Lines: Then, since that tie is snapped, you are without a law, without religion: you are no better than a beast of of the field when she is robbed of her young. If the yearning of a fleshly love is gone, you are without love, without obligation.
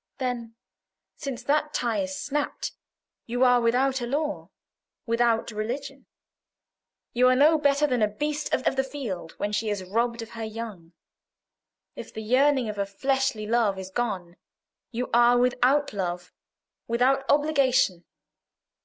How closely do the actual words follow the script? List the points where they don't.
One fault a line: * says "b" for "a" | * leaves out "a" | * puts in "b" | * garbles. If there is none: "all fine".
all fine